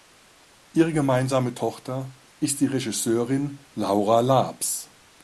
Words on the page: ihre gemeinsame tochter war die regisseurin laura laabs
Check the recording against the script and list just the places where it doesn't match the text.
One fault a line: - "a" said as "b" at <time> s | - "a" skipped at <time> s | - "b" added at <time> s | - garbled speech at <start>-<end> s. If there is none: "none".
- "war" said as "ist" at 2.4 s